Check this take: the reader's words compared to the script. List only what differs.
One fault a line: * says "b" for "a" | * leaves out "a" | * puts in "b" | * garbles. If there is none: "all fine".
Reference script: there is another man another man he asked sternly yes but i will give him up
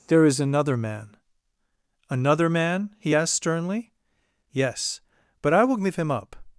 all fine